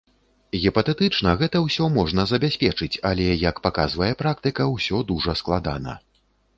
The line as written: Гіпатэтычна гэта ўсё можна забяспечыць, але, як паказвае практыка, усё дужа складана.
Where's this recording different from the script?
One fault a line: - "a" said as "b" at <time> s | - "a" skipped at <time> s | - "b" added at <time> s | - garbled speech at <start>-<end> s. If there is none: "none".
none